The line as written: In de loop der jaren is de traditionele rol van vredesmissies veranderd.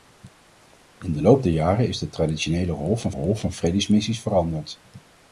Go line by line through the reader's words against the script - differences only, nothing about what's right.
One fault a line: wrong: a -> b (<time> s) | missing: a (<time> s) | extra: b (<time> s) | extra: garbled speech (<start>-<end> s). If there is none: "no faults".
extra: rol van (3.1 s)